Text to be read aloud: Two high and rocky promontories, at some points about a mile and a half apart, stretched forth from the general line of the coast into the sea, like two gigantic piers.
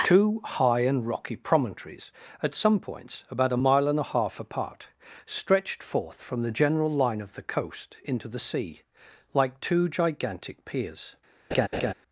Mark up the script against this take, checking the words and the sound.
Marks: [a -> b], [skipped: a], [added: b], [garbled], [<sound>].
Two high and rocky promontories, at some points about a mile and a half apart, stretched forth from the general line of the coast into the sea, like two gigantic piers. [laugh]